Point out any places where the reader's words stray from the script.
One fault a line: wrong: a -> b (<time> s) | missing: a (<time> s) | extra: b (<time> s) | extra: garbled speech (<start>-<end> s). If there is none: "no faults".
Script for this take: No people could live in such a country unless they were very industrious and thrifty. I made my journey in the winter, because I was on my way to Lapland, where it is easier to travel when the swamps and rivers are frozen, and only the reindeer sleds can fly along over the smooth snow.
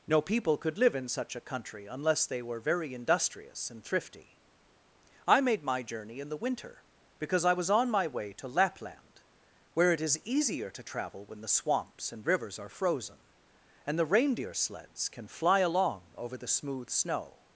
missing: only (14.0 s)